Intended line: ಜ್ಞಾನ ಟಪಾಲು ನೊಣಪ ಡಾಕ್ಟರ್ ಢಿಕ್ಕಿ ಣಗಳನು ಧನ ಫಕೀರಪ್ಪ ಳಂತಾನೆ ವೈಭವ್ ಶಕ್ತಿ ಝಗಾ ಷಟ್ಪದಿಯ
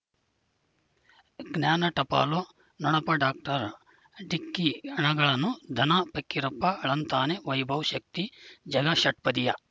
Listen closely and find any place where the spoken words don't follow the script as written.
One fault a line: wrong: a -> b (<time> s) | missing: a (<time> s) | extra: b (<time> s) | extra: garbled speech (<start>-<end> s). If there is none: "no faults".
no faults